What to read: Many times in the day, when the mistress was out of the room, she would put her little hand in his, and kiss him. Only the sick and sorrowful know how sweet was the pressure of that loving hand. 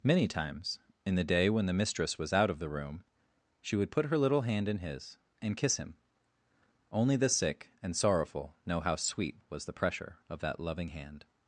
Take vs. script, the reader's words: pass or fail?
pass